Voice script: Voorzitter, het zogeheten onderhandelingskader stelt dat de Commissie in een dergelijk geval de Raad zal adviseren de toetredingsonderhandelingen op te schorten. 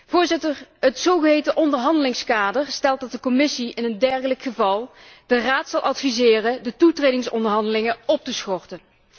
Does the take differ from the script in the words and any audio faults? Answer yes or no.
no